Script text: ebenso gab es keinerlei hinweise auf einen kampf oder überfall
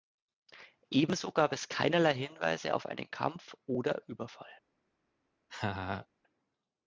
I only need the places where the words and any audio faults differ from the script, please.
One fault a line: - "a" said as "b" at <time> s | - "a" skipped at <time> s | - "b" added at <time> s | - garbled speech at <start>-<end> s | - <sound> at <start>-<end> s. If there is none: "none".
- laugh at 5.5-6.1 s